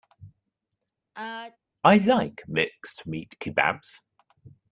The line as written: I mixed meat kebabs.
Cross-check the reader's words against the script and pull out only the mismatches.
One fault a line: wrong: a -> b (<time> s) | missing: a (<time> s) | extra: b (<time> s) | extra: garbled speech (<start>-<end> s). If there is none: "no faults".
extra: like (2.0 s)